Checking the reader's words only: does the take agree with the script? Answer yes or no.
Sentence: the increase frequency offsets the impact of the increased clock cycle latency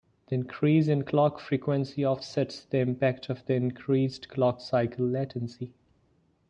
no